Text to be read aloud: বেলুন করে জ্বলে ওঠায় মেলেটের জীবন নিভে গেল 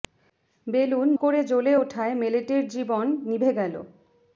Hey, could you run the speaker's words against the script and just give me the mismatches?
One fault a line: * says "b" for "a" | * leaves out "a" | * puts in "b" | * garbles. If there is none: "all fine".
all fine